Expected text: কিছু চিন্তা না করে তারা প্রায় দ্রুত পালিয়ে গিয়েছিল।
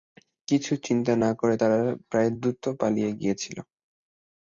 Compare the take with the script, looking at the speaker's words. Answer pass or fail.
pass